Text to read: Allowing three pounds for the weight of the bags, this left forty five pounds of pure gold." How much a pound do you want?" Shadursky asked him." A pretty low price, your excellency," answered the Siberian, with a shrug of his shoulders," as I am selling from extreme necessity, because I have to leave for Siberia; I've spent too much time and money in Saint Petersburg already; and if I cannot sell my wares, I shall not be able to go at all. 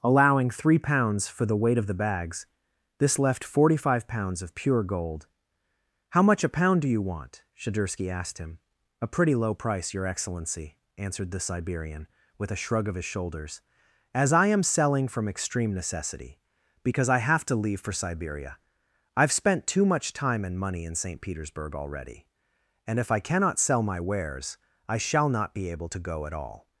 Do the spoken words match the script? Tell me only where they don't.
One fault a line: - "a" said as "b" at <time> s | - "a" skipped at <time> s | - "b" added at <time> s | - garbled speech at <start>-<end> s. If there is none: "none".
none